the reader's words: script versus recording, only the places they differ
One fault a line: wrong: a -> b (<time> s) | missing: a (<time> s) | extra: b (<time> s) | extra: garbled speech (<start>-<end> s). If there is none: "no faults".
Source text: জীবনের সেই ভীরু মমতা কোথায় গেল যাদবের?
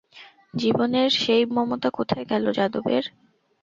missing: ভীরু (1.4 s)